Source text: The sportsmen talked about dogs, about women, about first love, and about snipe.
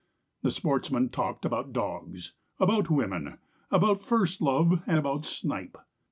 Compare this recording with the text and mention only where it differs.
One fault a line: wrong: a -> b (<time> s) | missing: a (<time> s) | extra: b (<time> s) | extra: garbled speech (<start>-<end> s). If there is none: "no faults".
no faults